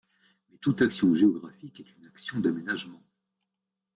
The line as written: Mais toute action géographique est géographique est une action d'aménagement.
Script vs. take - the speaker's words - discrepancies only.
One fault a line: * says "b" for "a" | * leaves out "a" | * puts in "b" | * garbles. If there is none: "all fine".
* leaves out "géographique est"